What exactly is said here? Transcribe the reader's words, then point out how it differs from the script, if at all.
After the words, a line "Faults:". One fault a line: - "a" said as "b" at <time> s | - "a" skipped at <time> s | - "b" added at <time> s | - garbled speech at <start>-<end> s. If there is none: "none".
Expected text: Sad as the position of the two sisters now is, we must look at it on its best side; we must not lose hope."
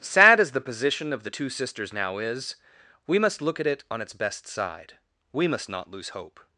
Sad as the position of the two sisters now is, we must look at it on its best side; we must not lose hope."
Faults:
none